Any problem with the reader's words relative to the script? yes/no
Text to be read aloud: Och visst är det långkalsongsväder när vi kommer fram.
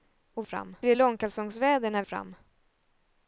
yes